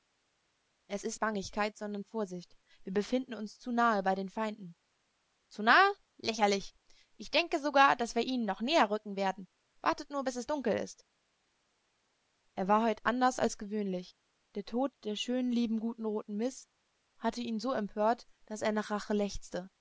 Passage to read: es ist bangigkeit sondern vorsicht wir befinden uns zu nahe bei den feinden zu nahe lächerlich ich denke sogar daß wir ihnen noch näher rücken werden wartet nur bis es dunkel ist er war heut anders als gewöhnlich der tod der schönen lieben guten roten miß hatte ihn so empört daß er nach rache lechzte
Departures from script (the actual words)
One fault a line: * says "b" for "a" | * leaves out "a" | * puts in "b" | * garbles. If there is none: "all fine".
all fine